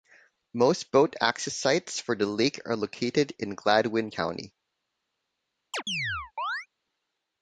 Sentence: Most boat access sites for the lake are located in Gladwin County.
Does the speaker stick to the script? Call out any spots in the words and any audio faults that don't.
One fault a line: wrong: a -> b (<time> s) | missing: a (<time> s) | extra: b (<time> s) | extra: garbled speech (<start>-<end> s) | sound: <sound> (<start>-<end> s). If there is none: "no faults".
sound: chirp (5.7-6.7 s)